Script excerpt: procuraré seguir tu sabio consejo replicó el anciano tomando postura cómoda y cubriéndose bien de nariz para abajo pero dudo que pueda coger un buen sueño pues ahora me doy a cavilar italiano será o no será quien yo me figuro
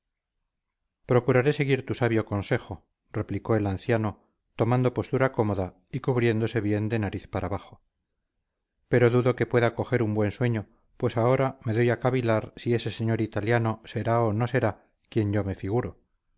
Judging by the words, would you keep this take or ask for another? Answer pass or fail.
fail